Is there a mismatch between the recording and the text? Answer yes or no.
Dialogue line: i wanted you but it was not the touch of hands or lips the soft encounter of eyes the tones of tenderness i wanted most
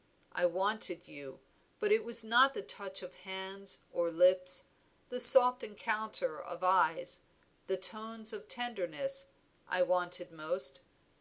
no